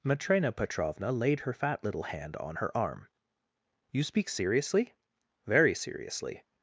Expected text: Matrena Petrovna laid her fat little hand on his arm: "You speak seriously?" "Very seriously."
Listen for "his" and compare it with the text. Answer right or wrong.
wrong